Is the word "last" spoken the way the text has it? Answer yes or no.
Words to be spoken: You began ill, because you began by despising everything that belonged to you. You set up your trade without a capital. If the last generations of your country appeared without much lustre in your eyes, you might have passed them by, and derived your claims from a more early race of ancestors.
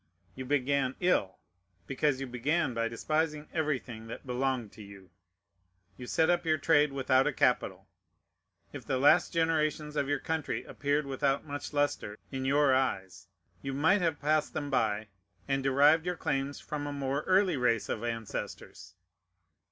yes